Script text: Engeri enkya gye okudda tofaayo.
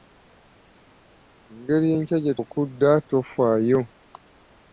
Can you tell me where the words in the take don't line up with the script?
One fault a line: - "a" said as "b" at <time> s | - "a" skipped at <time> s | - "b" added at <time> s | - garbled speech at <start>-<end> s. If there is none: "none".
none